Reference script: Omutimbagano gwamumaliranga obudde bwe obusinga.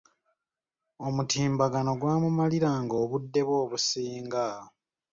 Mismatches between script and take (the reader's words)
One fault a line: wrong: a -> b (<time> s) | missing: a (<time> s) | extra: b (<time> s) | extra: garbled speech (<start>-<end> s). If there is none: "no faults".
no faults